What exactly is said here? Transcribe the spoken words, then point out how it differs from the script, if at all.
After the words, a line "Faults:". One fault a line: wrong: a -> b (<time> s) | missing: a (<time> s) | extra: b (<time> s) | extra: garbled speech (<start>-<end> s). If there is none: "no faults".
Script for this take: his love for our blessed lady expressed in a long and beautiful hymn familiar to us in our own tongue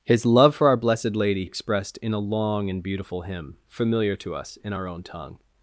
his love for our blessed lady expressed in a long and beautiful hymn familiar to us in our own tongue
Faults:
no faults